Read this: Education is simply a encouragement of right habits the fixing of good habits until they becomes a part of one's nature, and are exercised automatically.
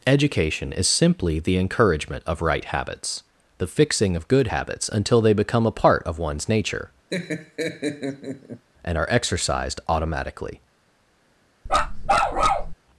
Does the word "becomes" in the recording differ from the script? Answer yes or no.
yes